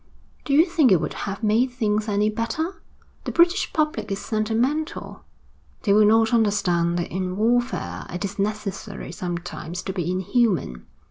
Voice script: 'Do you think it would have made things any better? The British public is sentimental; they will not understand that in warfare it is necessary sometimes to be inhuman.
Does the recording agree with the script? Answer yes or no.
yes